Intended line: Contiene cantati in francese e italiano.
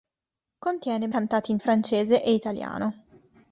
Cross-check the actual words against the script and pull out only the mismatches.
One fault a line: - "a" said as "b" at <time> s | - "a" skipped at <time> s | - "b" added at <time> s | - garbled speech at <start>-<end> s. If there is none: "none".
none